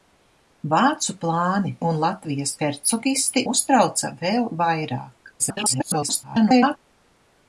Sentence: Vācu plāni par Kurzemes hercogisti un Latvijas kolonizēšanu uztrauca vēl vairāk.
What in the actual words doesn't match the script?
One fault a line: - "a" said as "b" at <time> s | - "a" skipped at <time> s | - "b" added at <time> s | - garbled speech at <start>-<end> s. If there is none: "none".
- "par Kurzemes hercogisti" skipped at 1.7 s
- "kolonizēšanu" said as "hercogisti" at 2.6 s
- garbled speech at 5.4-6.8 s